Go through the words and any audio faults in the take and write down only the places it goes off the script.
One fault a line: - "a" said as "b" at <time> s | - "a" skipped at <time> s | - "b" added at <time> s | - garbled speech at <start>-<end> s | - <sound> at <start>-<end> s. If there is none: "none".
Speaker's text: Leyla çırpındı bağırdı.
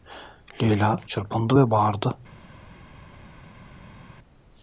- "ve" added at 1.6 s